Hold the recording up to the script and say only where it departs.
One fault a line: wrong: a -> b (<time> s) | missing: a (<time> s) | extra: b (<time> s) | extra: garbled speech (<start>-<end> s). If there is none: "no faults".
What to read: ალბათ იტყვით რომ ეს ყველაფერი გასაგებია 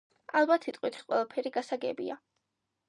missing: რომ (1.0 s)